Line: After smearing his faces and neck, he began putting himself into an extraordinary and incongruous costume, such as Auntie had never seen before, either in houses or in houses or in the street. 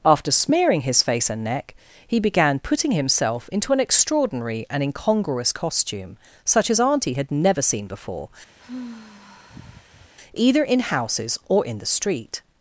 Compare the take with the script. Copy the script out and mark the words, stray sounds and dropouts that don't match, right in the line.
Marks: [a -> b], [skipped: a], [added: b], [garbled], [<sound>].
After smearing his [faces -> face] and neck, he began putting himself into an extraordinary and incongruous costume, such as Auntie had never seen before, [sigh] either in houses or in [skipped: houses or in] the street.